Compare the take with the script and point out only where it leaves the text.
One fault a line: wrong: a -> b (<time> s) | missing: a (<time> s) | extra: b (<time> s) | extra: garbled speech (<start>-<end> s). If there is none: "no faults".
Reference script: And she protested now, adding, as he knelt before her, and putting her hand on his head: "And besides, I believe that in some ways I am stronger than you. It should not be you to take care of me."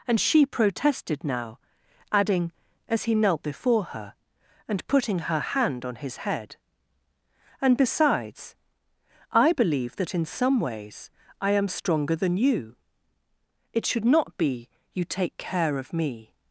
missing: to (15.0 s)